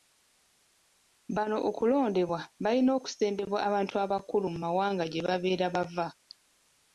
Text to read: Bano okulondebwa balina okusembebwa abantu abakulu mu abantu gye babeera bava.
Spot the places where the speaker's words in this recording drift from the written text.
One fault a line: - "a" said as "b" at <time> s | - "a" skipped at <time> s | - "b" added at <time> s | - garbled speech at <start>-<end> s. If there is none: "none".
- "abantu" said as "mawanga" at 4.6 s